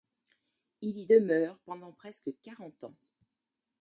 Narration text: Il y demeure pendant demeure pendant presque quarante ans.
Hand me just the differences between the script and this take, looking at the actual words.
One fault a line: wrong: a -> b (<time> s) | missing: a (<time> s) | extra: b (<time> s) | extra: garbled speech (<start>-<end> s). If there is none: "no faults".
missing: demeure pendant (1.9 s)